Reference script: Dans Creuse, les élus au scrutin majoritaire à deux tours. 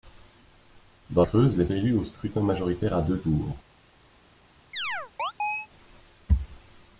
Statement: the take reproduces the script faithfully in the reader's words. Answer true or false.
true